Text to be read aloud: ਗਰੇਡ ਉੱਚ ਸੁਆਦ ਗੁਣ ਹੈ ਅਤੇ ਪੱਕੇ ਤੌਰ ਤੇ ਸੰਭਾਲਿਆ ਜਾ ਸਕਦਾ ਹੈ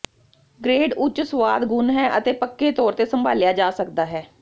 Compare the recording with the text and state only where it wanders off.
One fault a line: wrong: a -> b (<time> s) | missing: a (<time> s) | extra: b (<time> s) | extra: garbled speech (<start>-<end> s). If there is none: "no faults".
no faults